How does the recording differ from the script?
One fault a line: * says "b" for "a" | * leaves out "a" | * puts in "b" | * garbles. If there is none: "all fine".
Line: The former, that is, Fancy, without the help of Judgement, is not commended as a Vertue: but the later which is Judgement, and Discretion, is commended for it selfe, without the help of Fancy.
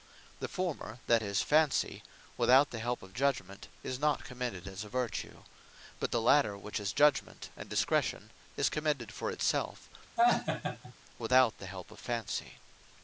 all fine